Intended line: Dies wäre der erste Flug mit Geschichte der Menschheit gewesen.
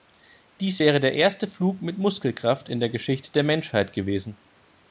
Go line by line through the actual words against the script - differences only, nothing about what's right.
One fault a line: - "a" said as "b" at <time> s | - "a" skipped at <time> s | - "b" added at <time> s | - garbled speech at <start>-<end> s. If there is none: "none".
- "Muskelkraft in der" added at 2.0 s